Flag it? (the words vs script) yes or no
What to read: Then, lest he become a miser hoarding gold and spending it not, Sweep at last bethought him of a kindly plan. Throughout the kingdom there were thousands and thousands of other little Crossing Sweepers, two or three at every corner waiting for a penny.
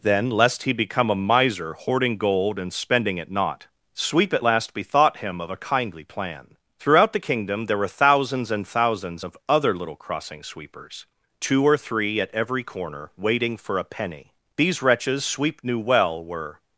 yes